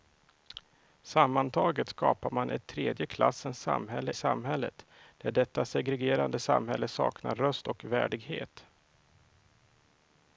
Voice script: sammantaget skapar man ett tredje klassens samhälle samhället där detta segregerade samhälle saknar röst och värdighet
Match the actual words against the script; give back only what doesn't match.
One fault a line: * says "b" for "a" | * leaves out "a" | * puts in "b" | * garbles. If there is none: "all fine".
all fine